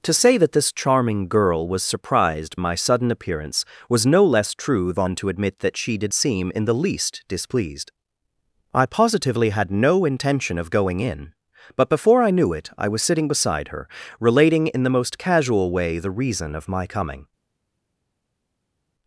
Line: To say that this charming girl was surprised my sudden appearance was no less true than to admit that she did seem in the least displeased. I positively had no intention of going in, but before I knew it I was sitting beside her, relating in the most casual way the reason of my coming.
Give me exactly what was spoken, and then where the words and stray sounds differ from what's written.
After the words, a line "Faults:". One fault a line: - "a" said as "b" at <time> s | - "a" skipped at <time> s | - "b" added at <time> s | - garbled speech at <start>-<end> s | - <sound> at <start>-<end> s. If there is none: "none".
To say that this charming girl was surprised my sudden appearance was no less true than to admit that she did seem in the least displeased. I positively had no intention of going in, but before I knew it I was sitting beside her, relating in the most casual way the reason of my coming.
Faults:
none